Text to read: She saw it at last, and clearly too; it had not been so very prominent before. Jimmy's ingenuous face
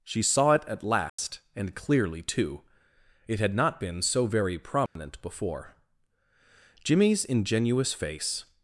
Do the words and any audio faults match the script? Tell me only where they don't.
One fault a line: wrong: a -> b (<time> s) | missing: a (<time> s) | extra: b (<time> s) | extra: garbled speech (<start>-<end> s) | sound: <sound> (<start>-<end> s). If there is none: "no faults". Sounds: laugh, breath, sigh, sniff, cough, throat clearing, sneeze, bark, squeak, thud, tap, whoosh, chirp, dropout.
sound: dropout (1.1-1.2 s)
sound: dropout (4.9-5.0 s)